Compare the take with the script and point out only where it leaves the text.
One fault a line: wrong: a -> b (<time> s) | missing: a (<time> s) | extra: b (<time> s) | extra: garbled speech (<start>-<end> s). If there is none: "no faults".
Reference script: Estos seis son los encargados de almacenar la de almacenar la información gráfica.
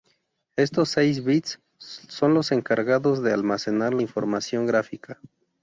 extra: bits (1.2 s)
missing: de almacenar la (4.0 s)